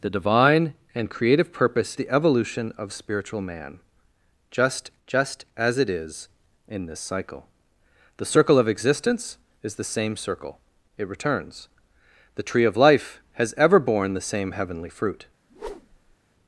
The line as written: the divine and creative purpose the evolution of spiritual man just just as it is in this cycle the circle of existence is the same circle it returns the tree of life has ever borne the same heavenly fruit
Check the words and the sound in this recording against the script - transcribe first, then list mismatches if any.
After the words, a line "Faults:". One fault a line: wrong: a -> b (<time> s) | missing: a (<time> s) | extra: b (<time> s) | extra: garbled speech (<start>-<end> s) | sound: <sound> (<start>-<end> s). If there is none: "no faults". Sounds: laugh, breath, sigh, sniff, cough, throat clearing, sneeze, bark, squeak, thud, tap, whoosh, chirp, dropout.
the divine and creative purpose the evolution of spiritual man just just as it is in this cycle the circle of existence is the same circle it returns the tree of life has ever borne the same heavenly fruit
Faults:
sound: whoosh (15.5-16.2 s)